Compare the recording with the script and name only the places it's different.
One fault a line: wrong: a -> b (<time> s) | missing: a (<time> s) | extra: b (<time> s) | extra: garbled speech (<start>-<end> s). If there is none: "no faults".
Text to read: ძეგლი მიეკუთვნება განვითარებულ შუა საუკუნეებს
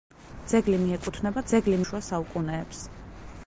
wrong: განვითარებულ -> ძეგლი (1.5 s)